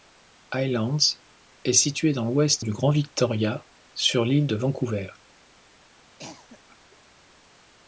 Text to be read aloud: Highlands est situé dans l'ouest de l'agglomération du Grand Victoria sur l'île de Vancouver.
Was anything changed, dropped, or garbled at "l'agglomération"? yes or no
yes